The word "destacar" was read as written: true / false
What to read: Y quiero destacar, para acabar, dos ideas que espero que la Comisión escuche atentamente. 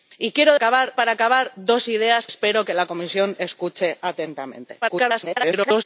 false